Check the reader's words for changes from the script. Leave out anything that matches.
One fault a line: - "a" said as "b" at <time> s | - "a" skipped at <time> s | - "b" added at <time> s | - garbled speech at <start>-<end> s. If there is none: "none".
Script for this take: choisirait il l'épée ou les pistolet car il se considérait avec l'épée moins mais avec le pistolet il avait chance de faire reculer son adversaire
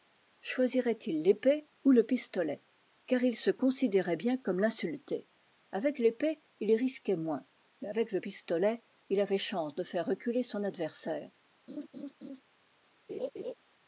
- "les" said as "le" at 1.9 s
- "bien comme l'insulté" added at 4.2 s
- "il risquait" added at 6.6 s